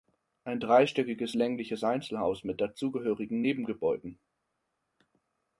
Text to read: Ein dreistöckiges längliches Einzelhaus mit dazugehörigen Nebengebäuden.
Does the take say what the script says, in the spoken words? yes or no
yes